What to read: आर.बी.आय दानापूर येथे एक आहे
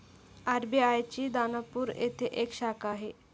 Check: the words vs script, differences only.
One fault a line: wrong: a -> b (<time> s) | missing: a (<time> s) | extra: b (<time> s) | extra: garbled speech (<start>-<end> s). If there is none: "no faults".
extra: ची (1.1 s)
extra: शाखा (2.5 s)